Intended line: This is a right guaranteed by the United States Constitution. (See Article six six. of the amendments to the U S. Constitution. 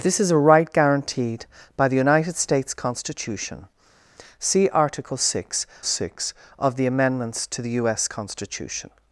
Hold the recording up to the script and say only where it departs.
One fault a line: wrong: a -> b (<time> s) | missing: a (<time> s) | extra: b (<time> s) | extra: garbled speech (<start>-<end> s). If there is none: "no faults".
no faults